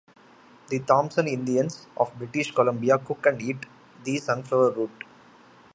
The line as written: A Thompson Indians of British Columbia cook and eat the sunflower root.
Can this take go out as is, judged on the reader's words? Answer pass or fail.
fail